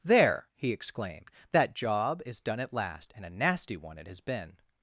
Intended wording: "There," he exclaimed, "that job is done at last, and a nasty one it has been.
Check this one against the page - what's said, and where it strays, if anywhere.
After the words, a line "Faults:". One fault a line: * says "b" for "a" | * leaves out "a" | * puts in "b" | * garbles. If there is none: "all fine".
"There," he exclaimed, "that job is done at last, and a nasty one it has been.
Faults:
all fine